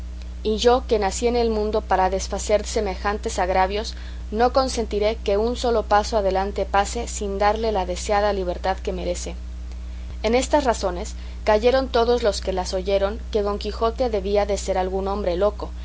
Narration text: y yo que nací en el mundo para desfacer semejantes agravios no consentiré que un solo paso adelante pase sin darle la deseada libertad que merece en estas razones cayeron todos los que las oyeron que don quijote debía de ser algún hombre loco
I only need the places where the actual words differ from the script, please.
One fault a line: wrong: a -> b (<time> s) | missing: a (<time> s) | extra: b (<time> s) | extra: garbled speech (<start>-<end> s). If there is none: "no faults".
no faults